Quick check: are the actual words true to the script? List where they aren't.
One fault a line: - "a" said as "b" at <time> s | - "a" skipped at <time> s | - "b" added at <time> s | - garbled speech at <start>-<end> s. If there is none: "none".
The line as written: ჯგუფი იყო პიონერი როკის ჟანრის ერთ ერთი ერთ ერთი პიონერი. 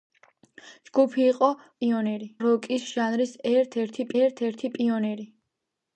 none